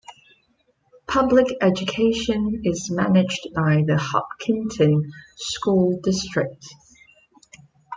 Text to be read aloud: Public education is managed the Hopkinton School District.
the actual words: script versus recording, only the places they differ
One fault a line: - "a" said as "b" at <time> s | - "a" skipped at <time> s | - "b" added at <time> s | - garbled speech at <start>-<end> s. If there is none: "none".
- "by" added at 3.5 s